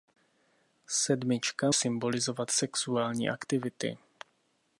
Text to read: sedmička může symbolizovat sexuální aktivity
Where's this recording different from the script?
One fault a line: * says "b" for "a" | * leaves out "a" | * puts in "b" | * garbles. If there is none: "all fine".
* leaves out "může"